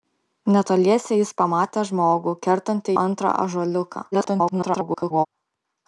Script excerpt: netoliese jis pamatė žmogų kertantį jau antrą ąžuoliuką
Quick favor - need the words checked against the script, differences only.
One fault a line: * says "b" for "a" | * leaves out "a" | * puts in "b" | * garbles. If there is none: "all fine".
* leaves out "jau"
* garbles